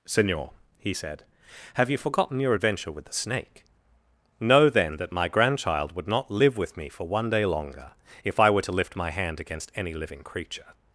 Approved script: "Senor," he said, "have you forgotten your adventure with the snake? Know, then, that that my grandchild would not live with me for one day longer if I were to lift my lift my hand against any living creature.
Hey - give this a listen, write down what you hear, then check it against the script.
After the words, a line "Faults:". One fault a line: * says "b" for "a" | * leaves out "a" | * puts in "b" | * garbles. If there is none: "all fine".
"Senor," he said, "have you forgotten your adventure with the snake? Know, then, that my grandchild would not live with me for one day longer if I were to lift my hand against any living creature.
Faults:
* leaves out "that"
* leaves out "lift my"